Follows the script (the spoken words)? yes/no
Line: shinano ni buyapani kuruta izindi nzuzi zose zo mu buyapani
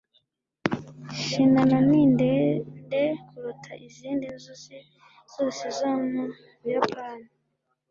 no